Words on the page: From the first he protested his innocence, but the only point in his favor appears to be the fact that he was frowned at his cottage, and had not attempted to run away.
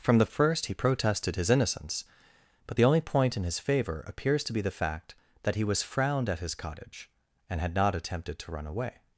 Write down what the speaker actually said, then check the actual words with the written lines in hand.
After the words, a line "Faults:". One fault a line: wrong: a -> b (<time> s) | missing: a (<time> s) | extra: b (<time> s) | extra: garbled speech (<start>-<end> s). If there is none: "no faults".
From the first he protested his innocence, but the only point in his favor appears to be the fact that he was frowned at his cottage, and had not attempted to run away.
Faults:
no faults